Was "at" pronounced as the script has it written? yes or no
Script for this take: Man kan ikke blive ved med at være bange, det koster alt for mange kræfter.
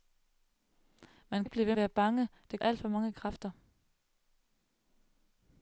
no